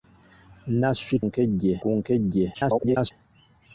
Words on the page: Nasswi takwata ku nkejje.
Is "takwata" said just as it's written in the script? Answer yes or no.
no